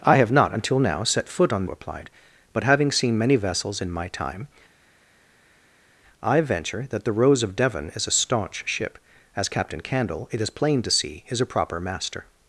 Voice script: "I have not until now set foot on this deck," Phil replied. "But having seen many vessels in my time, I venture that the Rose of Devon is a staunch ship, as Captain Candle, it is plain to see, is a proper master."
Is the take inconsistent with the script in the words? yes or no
yes